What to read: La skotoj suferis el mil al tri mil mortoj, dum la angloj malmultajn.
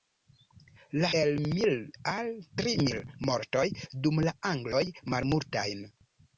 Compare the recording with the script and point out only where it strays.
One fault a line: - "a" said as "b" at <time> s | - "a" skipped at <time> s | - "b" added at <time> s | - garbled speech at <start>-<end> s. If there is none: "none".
- "skotoj suferis" skipped at 1.1 s